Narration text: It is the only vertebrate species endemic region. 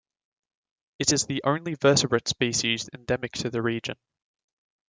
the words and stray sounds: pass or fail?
fail